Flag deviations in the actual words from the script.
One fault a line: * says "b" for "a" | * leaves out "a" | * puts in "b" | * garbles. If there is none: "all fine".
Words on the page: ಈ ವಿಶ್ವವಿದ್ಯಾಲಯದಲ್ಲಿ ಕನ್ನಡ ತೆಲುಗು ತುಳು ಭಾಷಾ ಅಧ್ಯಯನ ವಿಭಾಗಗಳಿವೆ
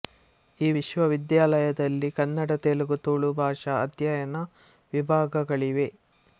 all fine